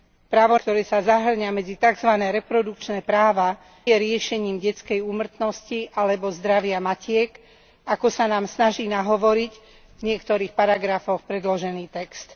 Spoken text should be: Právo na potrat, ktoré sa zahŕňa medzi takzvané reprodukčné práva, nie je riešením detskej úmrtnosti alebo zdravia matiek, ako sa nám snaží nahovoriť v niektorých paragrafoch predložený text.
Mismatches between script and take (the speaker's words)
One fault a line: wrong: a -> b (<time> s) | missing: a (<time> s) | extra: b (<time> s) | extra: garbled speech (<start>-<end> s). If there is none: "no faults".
missing: na potrat (0.6 s)
missing: nie (3.6 s)